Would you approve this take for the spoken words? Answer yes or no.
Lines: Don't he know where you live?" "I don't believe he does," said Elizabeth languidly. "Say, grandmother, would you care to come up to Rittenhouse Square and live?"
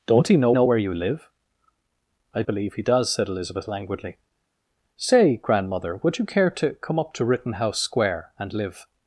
no